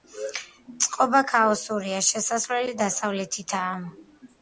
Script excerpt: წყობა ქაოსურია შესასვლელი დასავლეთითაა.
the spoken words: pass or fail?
pass